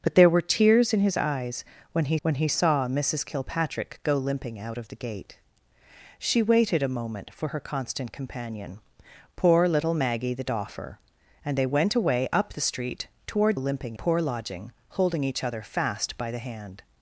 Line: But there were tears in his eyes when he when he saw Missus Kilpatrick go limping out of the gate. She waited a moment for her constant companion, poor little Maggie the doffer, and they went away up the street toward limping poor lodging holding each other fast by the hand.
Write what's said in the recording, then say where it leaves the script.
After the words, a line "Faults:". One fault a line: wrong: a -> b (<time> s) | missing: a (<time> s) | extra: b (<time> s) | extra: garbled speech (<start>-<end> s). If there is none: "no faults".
But there were tears in his eyes when he when he saw Missus Kilpatrick go limping out of the gate. She waited a moment for her constant companion, poor little Maggie the doffer, and they went away up the street toward limping poor lodging holding each other fast by the hand.
Faults:
no faults